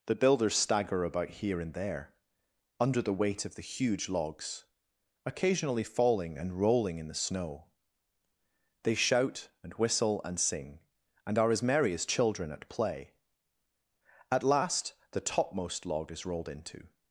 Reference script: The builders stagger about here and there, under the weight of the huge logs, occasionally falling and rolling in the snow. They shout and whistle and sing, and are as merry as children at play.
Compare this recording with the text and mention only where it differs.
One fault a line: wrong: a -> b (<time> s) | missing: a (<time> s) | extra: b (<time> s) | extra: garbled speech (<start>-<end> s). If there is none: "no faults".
extra: At last the topmost log is rolled into (14.3 s)